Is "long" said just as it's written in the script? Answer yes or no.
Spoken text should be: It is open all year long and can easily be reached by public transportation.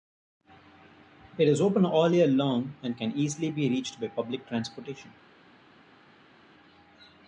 yes